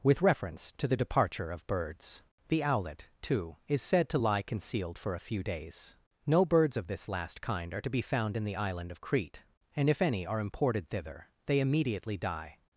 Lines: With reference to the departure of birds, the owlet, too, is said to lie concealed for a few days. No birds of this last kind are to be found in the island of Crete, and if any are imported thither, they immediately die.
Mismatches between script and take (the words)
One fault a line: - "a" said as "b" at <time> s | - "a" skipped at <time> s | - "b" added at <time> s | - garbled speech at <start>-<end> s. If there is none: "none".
none